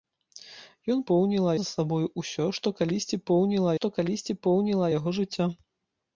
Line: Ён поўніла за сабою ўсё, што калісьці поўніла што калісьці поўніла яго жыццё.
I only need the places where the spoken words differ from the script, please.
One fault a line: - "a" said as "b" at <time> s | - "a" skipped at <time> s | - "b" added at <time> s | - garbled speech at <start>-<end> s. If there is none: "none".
none